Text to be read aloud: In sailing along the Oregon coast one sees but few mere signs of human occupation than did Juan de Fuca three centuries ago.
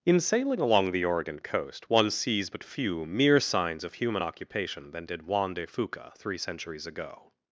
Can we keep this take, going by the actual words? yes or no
yes